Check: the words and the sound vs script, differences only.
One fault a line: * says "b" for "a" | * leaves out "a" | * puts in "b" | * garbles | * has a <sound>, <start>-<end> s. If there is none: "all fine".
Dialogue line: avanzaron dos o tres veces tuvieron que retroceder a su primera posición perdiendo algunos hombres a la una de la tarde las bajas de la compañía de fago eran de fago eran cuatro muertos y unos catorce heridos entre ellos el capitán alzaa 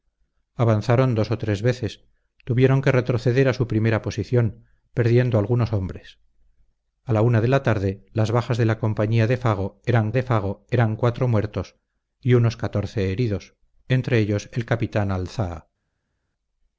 all fine